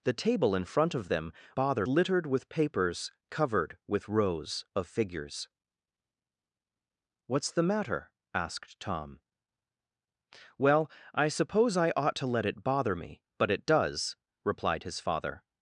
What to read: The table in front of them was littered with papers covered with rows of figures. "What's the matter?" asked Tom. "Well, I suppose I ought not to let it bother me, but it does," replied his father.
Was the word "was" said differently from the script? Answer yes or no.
yes